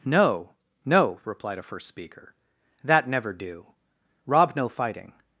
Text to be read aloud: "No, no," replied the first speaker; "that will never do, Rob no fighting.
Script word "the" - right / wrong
wrong